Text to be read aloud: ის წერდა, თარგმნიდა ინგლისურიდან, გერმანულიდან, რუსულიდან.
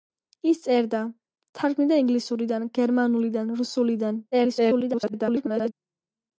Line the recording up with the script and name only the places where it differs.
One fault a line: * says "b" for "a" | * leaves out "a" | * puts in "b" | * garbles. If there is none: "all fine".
* garbles